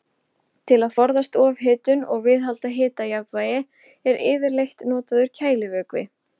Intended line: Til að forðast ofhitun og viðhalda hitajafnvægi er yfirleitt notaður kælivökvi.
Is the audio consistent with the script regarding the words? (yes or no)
yes